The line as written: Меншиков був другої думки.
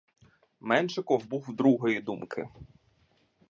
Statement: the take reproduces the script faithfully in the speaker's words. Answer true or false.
true